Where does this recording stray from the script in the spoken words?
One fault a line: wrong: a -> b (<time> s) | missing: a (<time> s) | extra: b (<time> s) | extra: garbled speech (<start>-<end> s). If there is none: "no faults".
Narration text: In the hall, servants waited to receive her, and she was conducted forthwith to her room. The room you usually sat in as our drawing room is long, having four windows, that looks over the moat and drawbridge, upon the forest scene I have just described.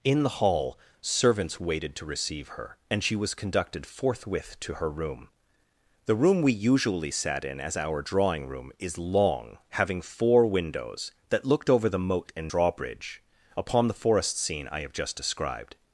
wrong: you -> we (6.4 s)
wrong: looks -> looked (11.4 s)